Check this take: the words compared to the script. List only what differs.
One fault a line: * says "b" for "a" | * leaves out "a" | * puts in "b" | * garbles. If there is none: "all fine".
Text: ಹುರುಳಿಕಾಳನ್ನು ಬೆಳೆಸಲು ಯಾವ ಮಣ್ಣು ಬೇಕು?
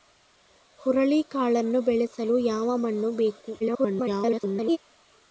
* garbles